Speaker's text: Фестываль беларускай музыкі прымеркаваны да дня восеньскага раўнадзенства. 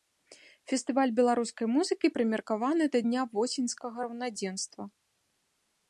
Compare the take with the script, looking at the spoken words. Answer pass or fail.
pass